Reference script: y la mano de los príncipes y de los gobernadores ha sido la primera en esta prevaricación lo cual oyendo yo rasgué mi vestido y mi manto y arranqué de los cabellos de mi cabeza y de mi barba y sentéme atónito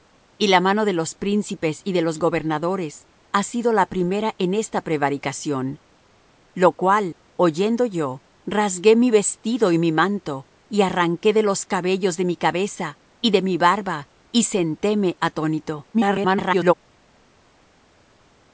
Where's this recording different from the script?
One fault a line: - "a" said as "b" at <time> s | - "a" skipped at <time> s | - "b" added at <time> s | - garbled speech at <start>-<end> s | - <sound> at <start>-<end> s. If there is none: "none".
- garbled speech at 15.9-16.7 s